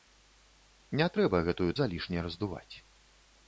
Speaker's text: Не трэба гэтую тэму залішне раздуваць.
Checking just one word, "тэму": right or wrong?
wrong